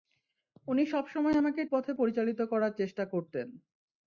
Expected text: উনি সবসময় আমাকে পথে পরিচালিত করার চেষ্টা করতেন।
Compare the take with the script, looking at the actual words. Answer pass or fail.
pass